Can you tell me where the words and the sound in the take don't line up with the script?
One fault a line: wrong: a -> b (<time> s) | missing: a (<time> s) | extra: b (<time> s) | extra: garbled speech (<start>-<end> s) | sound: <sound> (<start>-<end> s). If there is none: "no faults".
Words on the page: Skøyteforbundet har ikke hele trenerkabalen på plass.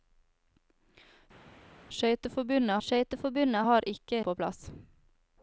extra: skøyteforbundet (2.9 s)
missing: hele trenerkabalen (4.2 s)